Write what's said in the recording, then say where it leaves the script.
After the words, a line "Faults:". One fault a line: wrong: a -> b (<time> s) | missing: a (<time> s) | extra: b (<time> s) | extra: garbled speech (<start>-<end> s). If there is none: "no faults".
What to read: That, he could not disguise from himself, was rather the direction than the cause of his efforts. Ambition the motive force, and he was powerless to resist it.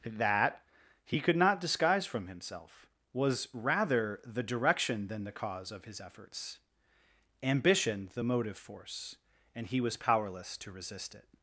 That, he could not disguise from himself, was rather the direction than the cause of his efforts. Ambition the motive force, and he was powerless to resist it.
Faults:
no faults